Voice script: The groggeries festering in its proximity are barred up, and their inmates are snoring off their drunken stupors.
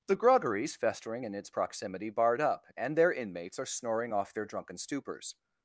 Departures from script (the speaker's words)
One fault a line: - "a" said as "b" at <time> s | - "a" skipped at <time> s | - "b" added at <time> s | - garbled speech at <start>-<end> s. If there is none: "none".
- "are" skipped at 2.1 s